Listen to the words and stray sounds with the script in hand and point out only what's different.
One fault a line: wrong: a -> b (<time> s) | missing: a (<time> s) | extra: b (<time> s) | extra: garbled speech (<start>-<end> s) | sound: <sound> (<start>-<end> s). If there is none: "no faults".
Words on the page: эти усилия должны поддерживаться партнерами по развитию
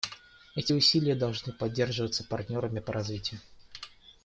no faults